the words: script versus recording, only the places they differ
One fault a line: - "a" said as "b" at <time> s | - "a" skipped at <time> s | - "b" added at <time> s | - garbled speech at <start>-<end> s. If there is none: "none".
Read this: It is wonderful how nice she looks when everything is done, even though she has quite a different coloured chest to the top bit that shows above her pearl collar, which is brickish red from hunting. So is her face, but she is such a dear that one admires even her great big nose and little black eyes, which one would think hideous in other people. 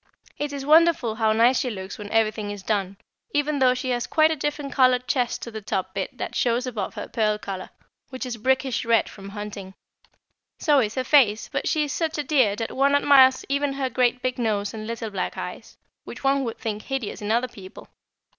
none